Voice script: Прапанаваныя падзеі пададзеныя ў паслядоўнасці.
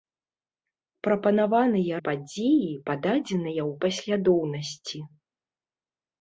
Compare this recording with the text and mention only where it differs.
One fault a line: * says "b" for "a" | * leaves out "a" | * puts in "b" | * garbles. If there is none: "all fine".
all fine